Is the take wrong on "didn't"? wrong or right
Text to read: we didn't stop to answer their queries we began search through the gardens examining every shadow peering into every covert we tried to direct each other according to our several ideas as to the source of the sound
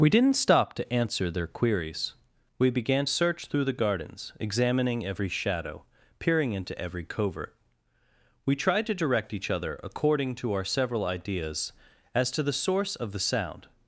right